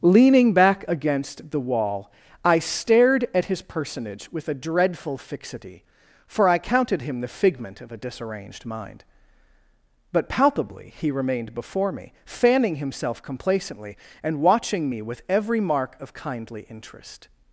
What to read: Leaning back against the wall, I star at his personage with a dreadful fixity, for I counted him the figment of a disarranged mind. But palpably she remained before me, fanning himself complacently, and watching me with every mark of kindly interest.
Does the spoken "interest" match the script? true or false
true